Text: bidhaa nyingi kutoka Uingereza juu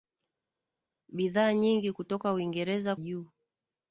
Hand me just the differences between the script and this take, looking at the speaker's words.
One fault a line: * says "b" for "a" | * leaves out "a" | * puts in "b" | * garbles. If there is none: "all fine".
all fine